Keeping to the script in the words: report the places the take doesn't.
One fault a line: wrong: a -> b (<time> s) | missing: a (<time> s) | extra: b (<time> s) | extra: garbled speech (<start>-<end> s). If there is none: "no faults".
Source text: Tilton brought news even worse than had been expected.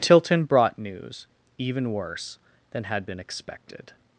no faults